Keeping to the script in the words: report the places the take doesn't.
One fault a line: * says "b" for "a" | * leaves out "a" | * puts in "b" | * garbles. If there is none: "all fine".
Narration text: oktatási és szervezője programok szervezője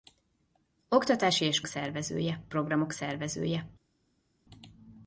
all fine